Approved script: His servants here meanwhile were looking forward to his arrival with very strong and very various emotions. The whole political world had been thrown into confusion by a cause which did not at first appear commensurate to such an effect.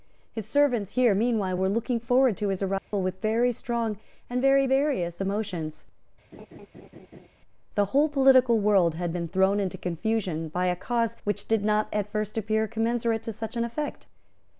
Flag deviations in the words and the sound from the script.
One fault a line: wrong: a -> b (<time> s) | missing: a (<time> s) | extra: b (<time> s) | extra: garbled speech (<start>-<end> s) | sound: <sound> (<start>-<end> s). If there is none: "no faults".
sound: dropout (2.8-2.9 s)
sound: laugh (6.3-7.3 s)